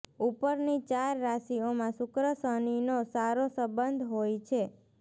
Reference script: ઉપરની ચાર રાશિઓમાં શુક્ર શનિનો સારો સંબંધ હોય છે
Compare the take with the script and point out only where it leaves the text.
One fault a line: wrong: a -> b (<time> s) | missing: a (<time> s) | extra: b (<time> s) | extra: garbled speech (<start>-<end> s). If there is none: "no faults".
no faults